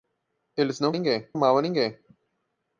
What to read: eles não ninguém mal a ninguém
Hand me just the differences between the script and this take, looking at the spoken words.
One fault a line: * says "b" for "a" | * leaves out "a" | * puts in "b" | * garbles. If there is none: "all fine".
all fine